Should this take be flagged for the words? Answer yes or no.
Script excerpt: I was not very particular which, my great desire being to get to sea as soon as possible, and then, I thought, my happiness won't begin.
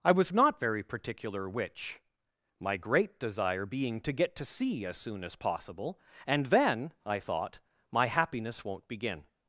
no